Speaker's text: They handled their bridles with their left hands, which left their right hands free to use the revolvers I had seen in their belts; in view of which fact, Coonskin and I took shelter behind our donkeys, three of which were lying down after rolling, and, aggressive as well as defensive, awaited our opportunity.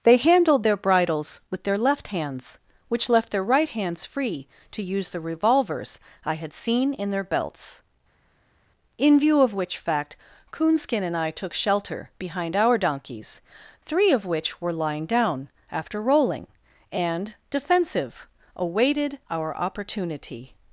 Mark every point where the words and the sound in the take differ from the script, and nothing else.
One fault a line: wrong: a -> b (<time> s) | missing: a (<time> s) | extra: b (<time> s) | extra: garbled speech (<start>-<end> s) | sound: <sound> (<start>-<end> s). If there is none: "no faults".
missing: aggressive as well as (17.4 s)